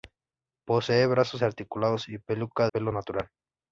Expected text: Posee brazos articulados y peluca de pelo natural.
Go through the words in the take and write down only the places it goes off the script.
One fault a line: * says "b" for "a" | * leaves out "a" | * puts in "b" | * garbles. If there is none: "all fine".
* leaves out "de"